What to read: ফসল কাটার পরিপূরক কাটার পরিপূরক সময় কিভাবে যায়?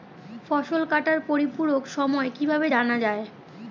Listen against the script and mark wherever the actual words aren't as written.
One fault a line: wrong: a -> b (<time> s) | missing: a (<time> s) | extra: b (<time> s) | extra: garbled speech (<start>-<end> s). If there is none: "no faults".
missing: কাটার পরিপূরক (1.8 s)
extra: জানা (2.7 s)